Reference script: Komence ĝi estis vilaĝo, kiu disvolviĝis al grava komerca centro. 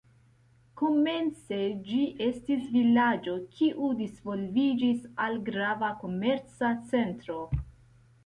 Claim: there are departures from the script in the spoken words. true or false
false